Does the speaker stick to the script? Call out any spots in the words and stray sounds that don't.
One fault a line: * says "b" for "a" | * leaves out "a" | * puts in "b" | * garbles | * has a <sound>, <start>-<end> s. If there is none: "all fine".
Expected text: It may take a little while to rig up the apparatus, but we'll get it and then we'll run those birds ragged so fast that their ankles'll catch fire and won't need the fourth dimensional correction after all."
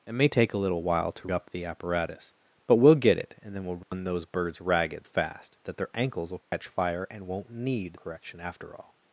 * leaves out "rig"
* has a dropout, 3.8-3.9 s
* leaves out "so"
* has a dropout, 6.4-6.5 s
* leaves out "the fourth dimensional"